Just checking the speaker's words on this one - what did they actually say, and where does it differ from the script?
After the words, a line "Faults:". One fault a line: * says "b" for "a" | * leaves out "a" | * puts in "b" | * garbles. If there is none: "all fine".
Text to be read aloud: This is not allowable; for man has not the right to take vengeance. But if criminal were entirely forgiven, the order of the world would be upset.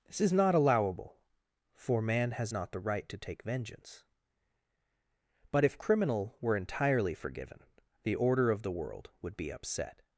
This is not allowable; for man has not the right to take vengeance. But if criminal were entirely forgiven, the order of the world would be upset.
Faults:
all fine